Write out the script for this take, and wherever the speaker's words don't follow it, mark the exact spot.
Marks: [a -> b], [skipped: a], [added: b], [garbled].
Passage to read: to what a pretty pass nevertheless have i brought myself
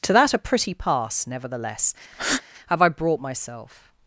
to [what -> that] a pretty pass nevertheless have i brought myself